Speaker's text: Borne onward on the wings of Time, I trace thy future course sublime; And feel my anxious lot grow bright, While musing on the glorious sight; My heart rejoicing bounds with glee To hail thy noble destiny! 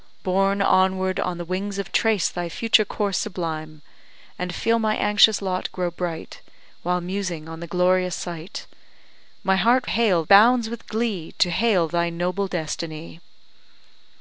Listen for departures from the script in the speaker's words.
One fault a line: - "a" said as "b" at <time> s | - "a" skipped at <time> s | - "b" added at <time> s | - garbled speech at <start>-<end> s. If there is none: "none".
- "Time I" skipped at 1.9 s
- "rejoicing" said as "hail" at 9.9 s